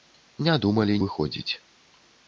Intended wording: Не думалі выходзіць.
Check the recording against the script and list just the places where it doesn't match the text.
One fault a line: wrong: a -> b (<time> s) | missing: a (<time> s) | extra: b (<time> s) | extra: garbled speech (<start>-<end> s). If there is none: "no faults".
no faults